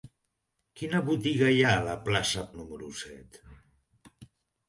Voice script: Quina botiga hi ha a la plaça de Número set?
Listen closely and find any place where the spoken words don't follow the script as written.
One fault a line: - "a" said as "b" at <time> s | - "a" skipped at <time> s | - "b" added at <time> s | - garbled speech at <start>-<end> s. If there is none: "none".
none